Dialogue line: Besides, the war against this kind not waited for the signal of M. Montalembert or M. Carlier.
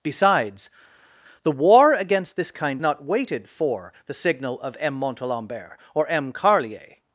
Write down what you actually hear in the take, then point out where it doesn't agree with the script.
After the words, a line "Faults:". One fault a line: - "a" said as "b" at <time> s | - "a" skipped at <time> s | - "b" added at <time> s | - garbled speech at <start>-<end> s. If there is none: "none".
Besides, the war against this kind not waited for the signal of M. Montalembert or M. Carlier.
Faults:
none